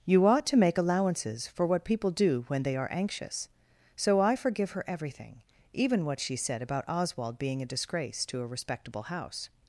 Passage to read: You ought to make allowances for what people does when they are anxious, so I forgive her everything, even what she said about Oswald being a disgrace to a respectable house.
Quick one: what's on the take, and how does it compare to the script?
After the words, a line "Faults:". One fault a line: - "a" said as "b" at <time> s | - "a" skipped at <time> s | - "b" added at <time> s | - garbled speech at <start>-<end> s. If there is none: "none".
You ought to make allowances for what people do when they are anxious, so I forgive her everything, even what she said about Oswald being a disgrace to a respectable house.
Faults:
- "does" said as "do" at 2.1 s